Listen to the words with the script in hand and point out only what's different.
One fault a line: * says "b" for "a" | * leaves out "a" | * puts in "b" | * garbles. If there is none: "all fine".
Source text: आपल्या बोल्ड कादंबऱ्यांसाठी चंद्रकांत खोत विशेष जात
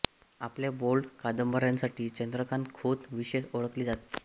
* puts in "ओळखले"